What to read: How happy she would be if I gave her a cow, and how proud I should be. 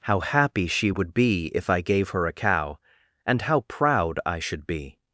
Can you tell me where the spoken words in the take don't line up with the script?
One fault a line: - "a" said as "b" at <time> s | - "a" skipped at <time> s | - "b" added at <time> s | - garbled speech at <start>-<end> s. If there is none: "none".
none